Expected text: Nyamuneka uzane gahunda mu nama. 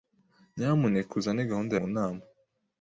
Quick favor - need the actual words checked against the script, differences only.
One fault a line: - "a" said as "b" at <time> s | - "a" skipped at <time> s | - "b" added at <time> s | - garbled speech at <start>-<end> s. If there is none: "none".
none